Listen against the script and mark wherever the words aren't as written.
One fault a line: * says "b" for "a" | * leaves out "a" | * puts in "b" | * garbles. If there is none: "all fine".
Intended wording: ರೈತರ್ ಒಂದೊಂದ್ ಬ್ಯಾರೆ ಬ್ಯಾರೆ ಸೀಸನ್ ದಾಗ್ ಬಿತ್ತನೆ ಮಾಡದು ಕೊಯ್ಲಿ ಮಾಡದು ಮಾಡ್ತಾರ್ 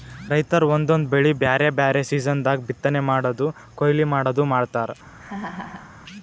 * puts in "ಬೆಳಿ"